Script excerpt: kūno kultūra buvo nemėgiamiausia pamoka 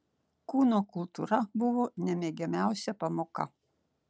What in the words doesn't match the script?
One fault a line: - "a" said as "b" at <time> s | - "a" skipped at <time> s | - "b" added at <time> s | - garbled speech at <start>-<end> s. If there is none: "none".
none